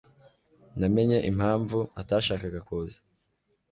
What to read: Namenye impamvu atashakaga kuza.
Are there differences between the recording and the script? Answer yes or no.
no